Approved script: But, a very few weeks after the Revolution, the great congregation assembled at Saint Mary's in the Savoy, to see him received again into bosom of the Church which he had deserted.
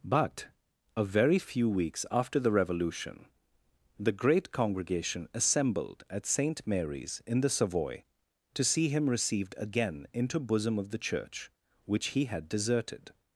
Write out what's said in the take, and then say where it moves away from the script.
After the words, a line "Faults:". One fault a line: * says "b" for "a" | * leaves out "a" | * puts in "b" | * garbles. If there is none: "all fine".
But, a very few weeks after the Revolution, the great congregation assembled at Saint Mary's in the Savoy, to see him received again into bosom of the Church which he had deserted.
Faults:
all fine